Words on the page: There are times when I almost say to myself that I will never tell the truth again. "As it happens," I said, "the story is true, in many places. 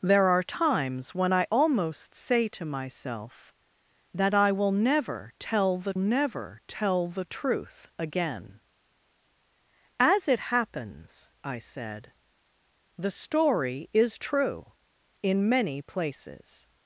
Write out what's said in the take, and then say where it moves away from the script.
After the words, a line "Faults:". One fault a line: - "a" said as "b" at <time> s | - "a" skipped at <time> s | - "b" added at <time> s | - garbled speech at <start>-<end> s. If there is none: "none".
There are times when I almost say to myself that I will never tell the never tell the truth again. "As it happens," I said, "the story is true, in many places.
Faults:
- "never tell the" added at 6.0 s